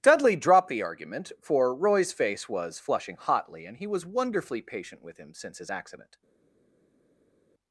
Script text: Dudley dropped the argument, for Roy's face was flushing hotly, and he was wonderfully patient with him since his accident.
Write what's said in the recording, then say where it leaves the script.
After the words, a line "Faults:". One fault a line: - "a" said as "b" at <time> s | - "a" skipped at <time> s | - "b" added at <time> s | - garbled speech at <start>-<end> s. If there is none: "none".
Dudley dropped the argument, for Roy's face was flushing hotly, and he was wonderfully patient with him since his accident.
Faults:
none